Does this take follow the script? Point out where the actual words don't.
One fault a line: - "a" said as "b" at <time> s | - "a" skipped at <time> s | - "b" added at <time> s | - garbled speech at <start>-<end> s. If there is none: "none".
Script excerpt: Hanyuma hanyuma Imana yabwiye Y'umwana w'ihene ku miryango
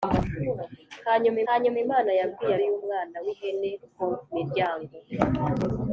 none